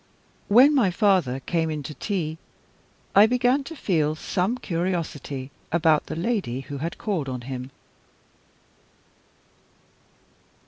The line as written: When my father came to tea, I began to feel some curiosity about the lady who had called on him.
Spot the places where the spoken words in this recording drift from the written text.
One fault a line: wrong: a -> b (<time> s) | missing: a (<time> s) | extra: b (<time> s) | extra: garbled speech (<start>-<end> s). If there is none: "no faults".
extra: in (1.7 s)